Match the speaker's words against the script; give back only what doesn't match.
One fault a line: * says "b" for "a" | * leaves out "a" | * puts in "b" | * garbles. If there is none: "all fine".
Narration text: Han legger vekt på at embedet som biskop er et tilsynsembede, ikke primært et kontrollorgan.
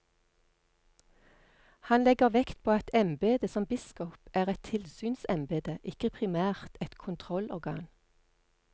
all fine